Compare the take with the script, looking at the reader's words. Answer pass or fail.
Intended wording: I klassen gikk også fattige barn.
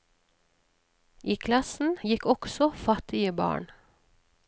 pass